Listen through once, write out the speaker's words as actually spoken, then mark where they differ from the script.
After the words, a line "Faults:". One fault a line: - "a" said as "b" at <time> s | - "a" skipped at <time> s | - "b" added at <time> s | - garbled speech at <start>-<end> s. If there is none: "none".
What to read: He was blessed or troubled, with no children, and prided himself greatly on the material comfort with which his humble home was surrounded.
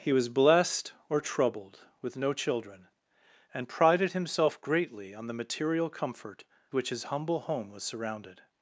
He was blessed or troubled, with no children, and prided himself greatly on the material comfort which his humble home was surrounded.
Faults:
- "with" skipped at 6.5 s